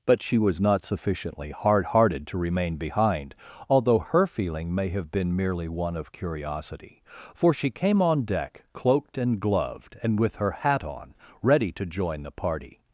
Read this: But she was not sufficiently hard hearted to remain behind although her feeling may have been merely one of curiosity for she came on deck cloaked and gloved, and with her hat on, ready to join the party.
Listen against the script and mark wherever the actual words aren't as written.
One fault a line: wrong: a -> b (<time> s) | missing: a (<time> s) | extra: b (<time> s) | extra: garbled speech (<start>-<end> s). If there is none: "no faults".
no faults